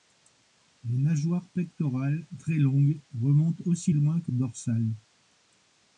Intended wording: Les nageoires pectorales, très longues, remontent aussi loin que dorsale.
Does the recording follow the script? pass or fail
pass